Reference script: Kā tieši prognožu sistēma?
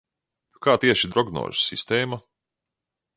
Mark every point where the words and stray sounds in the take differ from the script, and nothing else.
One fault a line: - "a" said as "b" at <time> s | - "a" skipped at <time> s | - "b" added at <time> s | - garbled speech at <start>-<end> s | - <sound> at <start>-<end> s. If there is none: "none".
none